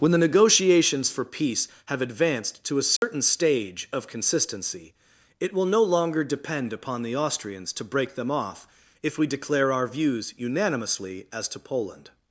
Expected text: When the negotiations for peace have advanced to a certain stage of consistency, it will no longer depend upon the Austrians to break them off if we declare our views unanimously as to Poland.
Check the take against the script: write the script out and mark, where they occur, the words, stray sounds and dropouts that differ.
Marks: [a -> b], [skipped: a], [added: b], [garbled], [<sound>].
When the negotiations for peace have advanced to a certain [dropout] stage of consistency, it will no longer depend upon the Austrians to break them off if we declare our views unanimously as to Poland.